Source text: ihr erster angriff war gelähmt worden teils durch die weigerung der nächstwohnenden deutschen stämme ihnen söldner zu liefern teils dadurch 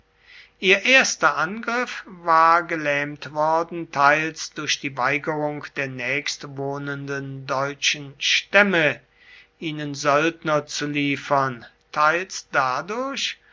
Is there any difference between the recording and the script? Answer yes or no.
no